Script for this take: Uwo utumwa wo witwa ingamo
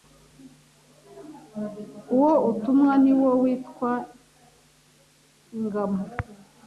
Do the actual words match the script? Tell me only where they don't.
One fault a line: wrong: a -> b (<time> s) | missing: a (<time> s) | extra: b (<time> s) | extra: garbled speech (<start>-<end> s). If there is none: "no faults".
extra: ni (3.0 s)